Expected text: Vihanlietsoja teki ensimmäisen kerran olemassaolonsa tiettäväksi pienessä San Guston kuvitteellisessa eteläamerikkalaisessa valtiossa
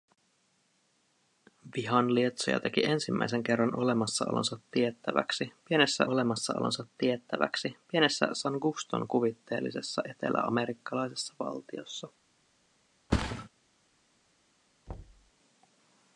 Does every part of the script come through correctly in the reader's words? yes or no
no